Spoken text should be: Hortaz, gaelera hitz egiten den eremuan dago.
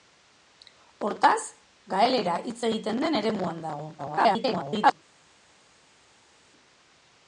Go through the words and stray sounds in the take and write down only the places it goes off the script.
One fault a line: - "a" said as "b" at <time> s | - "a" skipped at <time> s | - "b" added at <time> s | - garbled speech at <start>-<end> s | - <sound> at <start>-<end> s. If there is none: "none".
- garbled speech at 4.0-4.9 s